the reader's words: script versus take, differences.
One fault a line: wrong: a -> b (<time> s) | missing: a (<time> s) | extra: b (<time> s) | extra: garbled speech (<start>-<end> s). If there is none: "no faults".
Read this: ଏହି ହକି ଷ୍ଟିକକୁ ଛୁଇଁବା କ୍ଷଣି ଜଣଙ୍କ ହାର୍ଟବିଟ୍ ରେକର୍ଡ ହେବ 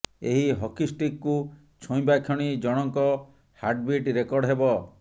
no faults